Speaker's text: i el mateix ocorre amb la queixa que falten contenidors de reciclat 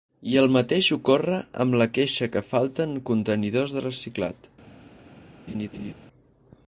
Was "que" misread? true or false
false